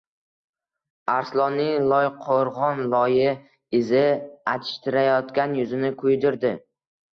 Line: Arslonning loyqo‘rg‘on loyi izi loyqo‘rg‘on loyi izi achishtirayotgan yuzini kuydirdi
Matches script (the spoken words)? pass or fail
fail